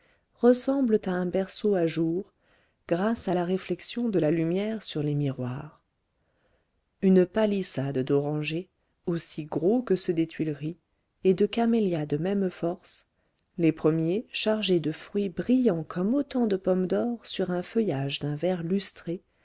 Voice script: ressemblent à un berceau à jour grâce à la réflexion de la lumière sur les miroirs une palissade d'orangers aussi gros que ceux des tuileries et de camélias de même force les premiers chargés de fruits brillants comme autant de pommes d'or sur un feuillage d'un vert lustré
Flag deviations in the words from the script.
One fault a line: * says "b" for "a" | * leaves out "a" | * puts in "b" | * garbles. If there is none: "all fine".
all fine